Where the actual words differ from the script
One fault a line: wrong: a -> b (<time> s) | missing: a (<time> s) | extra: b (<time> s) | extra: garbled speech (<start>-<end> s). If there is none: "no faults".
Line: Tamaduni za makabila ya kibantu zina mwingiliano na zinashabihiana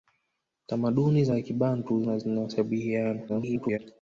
missing: makabila (1.3 s)
missing: zina mwingiliano (2.0 s)
extra: garbled speech (3.3-3.8 s)